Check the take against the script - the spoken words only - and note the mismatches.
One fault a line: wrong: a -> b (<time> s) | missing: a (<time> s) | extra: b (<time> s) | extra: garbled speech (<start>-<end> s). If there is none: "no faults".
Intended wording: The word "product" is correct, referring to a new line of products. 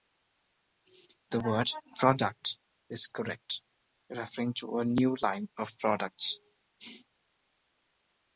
no faults